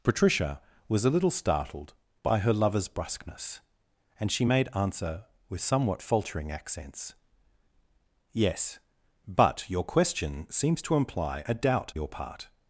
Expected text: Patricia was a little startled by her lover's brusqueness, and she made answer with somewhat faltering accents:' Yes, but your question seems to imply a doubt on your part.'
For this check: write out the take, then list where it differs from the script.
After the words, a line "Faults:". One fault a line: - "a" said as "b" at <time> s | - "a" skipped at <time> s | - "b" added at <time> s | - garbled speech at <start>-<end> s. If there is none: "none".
Patricia was a little startled by her lover's brusqueness, and she made answer with somewhat faltering accents:' Yes, but your question seems to imply a doubt your part.'
Faults:
- "on" skipped at 11.9 s